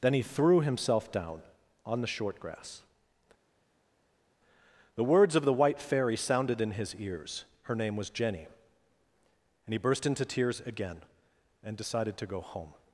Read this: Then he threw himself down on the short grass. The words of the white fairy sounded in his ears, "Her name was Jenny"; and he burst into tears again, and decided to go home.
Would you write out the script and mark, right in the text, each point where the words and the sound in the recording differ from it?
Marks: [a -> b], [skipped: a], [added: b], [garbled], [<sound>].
Then he threw himself down on the short grass. The words of the white fairy sounded in his ears, "Her name was Jenny"; and he burst into tears again, and decided to go home.